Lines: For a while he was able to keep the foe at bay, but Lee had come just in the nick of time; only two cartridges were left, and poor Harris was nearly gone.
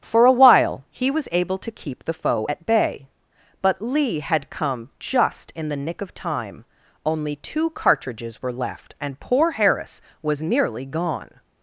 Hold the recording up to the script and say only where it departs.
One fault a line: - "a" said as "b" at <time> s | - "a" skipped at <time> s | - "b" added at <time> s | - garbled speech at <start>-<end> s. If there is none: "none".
none